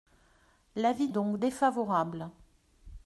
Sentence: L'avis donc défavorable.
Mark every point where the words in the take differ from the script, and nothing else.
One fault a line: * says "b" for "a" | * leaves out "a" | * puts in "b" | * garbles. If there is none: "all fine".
all fine